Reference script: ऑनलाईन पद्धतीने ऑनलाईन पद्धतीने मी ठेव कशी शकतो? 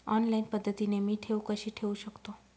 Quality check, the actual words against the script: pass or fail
fail